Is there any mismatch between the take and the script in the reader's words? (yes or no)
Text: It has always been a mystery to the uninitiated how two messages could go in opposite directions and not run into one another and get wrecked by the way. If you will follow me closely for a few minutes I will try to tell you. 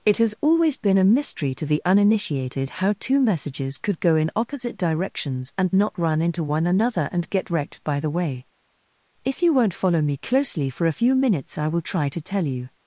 yes